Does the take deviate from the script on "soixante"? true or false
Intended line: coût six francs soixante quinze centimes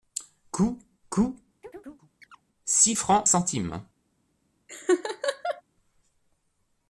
true